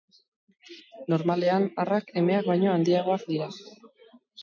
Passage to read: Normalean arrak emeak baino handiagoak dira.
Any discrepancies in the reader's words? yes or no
no